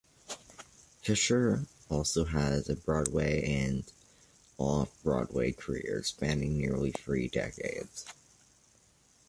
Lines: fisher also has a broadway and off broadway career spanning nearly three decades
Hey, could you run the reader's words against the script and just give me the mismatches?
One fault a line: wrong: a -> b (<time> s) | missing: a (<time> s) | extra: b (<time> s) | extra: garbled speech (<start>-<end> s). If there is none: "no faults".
no faults